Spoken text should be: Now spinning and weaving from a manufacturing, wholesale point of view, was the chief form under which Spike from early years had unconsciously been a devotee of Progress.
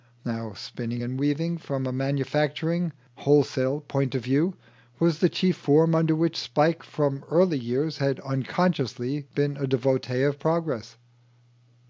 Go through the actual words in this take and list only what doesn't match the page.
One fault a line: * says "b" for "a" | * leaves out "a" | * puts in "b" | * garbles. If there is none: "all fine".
all fine